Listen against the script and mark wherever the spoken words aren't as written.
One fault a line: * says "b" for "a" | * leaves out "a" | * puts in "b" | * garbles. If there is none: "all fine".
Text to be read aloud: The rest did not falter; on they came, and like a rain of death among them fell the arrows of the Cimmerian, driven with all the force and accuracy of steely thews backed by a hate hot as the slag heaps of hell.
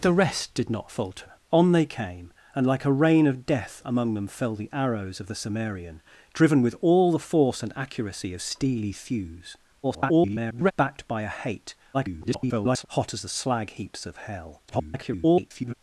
* garbles
* garbles
* garbles